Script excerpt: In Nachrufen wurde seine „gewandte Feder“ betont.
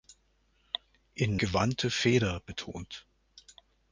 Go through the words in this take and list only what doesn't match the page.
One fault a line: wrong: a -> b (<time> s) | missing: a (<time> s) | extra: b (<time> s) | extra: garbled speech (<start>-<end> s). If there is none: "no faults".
missing: Nachrufen wurde seine (1.4 s)